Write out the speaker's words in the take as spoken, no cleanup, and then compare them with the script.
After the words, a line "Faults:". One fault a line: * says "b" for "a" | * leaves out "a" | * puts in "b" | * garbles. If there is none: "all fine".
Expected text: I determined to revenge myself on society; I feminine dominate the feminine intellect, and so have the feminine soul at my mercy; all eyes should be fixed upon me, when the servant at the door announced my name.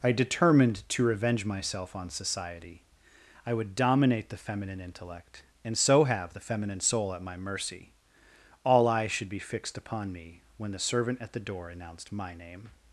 I determined to revenge myself on society; I would dominate the feminine intellect, and so have the feminine soul at my mercy; all eyes should be fixed upon me, when the servant at the door announced my name.
Faults:
* says "would" for "feminine"